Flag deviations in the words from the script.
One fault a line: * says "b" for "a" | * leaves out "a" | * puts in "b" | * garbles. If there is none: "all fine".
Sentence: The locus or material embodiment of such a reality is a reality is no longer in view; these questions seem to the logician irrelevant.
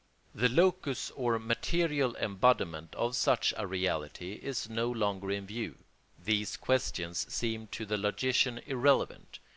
* leaves out "a reality is"